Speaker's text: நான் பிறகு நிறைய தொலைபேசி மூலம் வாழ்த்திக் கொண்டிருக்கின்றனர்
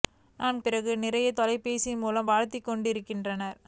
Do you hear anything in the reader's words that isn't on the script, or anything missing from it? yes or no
no